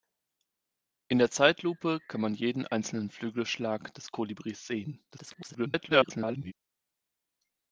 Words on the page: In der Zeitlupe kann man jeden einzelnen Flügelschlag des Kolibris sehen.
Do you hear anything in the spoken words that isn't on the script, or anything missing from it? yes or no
yes